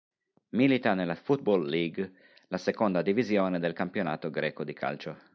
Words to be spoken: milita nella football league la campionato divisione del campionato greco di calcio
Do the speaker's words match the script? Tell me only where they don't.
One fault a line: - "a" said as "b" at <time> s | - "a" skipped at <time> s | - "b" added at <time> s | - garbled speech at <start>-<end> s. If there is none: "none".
- "campionato" said as "seconda" at 2.6 s